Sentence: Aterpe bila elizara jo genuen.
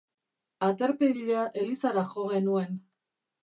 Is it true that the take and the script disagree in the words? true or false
false